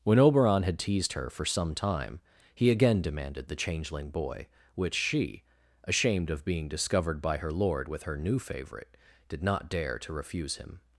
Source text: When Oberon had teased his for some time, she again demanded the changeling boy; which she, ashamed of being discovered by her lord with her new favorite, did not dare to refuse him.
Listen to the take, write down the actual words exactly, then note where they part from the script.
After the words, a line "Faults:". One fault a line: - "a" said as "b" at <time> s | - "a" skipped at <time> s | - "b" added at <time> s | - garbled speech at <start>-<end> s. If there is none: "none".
When Oberon had teased her for some time, he again demanded the changeling boy; which she, ashamed of being discovered by her lord with her new favorite, did not dare to refuse him.
Faults:
- "his" said as "her" at 1.1 s
- "she" said as "he" at 2.5 s